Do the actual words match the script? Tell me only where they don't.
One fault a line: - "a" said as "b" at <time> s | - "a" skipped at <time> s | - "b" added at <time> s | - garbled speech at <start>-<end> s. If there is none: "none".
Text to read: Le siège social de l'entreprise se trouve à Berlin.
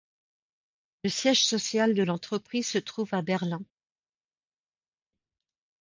none